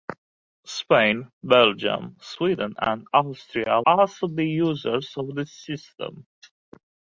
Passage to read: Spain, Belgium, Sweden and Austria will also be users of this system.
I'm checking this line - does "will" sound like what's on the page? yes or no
no